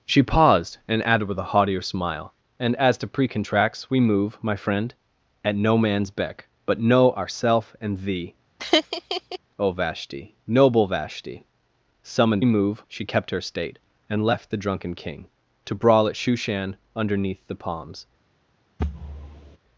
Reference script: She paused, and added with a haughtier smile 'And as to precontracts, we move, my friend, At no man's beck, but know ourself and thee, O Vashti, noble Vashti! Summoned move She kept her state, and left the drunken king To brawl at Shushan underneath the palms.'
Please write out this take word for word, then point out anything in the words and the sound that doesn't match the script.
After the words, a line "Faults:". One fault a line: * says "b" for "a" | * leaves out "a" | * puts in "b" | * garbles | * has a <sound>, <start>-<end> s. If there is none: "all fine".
She paused, and added with a haughtier smile 'And as to precontracts, we move, my friend, At no man's beck, but know ourself and thee, O Vashti, noble Vashti! Summoned move She kept her state, and left the drunken king To brawl at Shushan underneath the palms.'
Faults:
* has a laugh, 8.6-9.4 s
* has a thud, 18.8-19.6 s